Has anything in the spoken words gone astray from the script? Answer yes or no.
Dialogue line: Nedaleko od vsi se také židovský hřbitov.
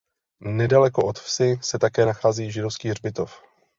yes